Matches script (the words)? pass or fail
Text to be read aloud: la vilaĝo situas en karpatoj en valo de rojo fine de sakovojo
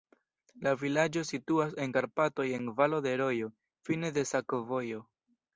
pass